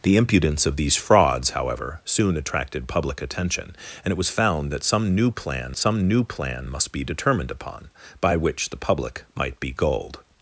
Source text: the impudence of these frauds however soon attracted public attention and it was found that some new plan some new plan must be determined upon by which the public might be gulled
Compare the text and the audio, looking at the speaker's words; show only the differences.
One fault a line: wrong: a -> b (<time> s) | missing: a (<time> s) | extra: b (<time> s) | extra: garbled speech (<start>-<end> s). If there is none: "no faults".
no faults